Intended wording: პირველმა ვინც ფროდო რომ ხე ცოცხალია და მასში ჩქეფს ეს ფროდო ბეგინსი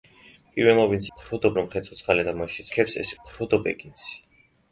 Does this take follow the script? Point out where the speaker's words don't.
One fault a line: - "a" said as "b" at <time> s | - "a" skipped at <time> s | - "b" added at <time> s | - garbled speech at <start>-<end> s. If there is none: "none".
none